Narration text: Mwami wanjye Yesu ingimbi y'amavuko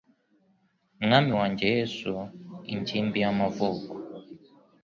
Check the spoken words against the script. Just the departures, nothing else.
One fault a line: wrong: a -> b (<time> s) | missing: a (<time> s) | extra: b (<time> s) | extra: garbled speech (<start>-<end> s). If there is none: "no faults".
no faults